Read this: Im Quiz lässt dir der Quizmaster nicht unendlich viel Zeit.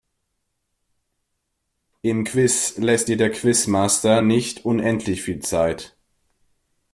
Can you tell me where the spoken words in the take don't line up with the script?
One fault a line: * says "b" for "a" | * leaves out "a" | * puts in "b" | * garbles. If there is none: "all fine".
all fine